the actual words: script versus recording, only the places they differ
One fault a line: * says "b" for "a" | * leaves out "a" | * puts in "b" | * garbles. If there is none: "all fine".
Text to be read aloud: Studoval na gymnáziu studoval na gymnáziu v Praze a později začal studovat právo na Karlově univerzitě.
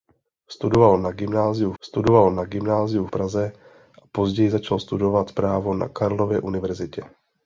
all fine